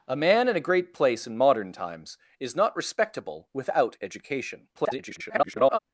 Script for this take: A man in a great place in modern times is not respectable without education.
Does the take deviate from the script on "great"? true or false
false